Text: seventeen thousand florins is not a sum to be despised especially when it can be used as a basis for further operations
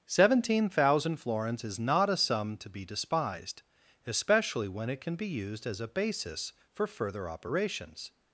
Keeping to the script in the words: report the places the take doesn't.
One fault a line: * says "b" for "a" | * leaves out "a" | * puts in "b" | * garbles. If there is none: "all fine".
all fine